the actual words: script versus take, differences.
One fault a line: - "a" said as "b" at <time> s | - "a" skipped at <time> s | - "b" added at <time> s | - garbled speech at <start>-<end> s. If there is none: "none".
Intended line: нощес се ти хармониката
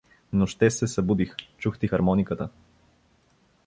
- "събудих чух" added at 0.9 s